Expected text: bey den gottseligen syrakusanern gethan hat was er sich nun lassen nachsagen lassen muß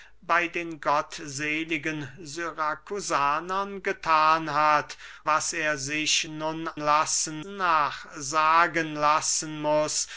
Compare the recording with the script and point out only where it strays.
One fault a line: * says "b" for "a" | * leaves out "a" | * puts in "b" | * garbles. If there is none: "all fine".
all fine